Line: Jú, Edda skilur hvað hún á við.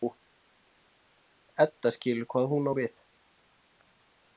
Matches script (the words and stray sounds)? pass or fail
pass